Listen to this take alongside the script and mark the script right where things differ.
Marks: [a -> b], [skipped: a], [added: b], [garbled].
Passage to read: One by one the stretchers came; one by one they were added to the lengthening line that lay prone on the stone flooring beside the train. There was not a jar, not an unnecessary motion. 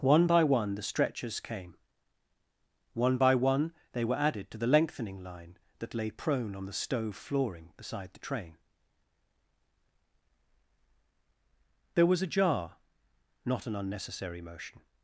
One by one the stretchers came; one by one they were added to the lengthening line that lay prone on the [stone -> stove] flooring beside the train. There was [skipped: not] a jar, not an unnecessary motion.